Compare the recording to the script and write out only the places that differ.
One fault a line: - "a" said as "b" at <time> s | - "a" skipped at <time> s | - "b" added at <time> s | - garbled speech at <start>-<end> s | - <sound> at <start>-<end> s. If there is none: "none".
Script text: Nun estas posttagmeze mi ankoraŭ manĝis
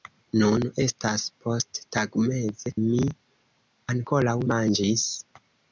none